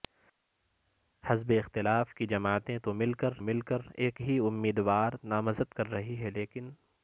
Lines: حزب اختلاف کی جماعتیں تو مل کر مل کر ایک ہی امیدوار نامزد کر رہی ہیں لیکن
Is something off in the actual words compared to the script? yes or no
no